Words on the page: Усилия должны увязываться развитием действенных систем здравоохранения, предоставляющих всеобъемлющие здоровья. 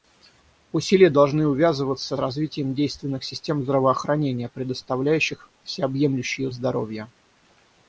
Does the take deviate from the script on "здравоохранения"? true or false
false